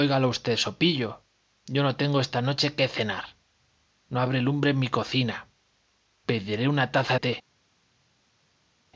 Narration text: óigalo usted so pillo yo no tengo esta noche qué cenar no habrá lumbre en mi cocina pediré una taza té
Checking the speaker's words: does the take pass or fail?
pass